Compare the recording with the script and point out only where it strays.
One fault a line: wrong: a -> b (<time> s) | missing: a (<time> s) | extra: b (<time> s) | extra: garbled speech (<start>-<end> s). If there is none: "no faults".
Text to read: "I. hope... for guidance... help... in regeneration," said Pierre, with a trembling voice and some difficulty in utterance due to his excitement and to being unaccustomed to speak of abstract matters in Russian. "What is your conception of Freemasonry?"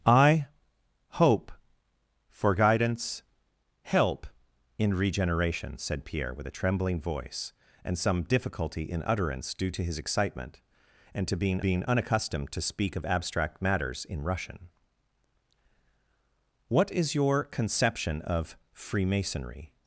extra: being (11.6 s)